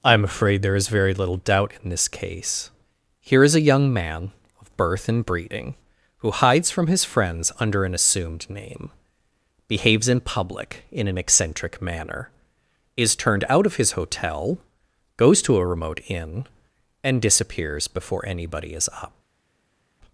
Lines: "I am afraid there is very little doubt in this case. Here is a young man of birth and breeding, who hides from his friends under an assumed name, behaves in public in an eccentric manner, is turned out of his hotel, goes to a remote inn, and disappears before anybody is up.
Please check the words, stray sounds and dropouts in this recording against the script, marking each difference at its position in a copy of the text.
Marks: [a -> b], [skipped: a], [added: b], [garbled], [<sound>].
"I am afraid there is very little doubt in this case. Here is a young man of birth and breeding, who hides from his friends under an assumed name, behaves in public in an eccentric manner, is turned out of his hotel, goes to a remote inn, and disappears before anybody is up.